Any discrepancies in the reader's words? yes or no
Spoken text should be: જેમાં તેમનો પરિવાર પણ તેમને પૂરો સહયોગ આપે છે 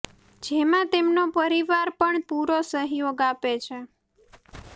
yes